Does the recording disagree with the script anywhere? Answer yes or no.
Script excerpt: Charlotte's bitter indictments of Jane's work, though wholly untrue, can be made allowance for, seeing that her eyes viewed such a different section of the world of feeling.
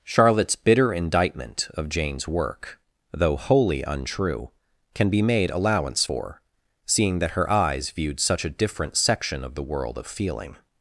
yes